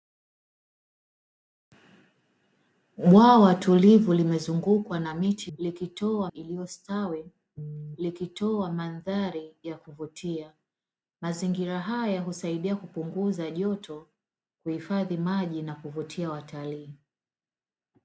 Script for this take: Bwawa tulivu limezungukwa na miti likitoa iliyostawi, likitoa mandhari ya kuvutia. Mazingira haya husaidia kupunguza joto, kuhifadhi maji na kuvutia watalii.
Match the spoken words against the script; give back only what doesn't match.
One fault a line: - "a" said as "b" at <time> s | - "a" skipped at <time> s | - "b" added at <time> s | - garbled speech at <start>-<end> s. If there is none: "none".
none